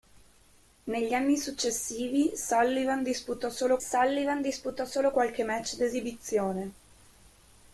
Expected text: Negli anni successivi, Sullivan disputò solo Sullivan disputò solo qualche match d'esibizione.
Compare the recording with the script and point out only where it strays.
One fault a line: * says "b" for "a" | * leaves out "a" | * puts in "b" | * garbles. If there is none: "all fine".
all fine